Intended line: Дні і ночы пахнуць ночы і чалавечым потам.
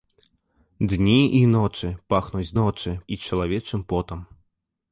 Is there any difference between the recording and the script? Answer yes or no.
no